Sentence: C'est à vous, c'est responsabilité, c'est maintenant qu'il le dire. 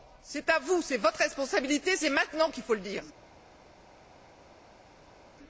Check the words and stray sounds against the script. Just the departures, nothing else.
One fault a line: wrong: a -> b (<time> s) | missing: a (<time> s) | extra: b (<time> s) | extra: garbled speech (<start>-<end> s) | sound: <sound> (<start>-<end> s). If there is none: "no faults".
extra: votre (1.0 s)
extra: faut (2.6 s)